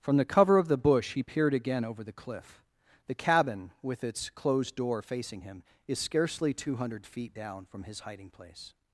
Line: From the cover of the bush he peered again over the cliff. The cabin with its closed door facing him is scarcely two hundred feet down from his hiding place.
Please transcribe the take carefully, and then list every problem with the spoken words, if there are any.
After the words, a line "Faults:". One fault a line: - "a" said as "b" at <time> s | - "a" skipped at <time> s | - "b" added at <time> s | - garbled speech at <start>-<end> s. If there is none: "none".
From the cover of the bush he peered again over the cliff. The cabin with its closed door facing him is scarcely two hundred feet down from his hiding place.
Faults:
none